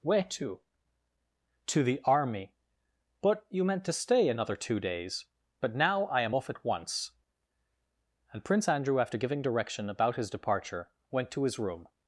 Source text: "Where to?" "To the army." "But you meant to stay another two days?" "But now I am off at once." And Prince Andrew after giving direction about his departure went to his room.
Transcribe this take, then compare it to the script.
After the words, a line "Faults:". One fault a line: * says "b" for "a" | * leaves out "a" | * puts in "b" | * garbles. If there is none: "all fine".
"Where to?" "To the army." "But you meant to stay another two days?" "But now I am off at once." And Prince Andrew after giving direction about his departure went to his room.
Faults:
all fine